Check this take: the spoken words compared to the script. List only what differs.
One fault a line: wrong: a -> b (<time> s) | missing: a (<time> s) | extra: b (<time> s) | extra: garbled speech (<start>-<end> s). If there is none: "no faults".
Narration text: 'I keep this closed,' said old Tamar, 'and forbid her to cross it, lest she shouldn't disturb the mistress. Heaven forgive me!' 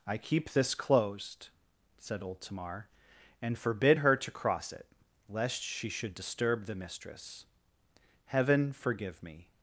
wrong: shouldn't -> should (5.9 s)